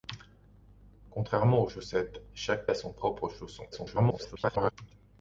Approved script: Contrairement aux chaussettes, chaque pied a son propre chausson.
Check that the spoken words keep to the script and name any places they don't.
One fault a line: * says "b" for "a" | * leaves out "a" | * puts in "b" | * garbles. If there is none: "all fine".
* leaves out "pied"
* garbles